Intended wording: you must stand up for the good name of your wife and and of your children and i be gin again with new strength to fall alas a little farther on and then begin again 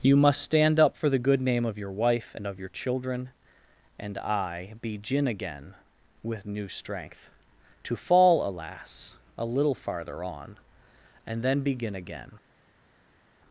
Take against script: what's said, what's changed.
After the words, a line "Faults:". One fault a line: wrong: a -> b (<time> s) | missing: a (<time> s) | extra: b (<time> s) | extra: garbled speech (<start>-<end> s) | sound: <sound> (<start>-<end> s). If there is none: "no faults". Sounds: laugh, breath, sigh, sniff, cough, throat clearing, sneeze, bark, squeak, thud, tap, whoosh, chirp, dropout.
you must stand up for the good name of your wife and of your children and i be gin again with new strength to fall alas a little farther on and then begin again
Faults:
missing: and (2.5 s)